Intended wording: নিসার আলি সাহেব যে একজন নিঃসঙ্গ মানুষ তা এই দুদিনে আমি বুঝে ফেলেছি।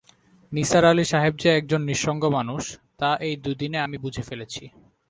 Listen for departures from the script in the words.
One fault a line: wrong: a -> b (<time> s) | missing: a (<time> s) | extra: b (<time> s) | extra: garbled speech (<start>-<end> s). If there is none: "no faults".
no faults